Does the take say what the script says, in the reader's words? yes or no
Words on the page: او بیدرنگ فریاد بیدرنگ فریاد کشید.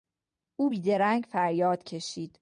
no